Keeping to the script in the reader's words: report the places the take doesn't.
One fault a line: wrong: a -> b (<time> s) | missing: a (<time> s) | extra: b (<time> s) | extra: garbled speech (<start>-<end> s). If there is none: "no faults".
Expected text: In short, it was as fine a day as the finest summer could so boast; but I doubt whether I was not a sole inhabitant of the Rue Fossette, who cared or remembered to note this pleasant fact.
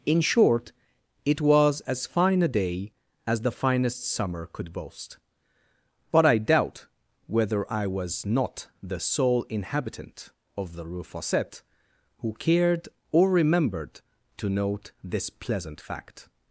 missing: so (4.7 s)
wrong: a -> the (8.8 s)